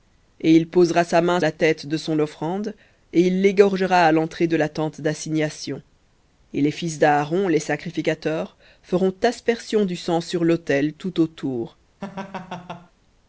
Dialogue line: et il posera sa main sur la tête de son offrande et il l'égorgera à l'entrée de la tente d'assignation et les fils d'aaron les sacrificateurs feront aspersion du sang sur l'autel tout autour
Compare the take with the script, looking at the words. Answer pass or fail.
fail